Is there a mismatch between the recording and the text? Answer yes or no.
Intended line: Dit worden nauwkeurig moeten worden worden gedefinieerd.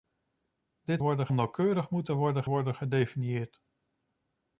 no